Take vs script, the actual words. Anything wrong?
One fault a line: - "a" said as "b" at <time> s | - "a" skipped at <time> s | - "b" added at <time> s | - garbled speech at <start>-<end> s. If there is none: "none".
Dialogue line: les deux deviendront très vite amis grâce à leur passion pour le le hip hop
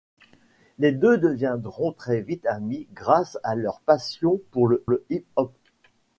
none